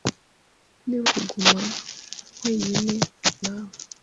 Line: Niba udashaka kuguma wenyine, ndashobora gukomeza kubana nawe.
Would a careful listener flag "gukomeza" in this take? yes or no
yes